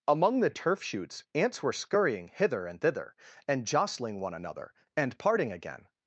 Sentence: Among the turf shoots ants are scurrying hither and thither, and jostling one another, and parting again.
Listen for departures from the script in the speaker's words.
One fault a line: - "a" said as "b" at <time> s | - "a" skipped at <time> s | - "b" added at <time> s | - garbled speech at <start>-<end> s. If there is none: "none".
- "are" said as "were" at 1.6 s